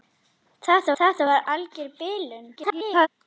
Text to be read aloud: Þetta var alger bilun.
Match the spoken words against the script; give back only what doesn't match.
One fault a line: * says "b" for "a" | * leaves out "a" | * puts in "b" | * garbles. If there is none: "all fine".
* puts in "þetta"
* garbles